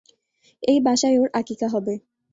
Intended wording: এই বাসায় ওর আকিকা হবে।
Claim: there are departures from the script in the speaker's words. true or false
false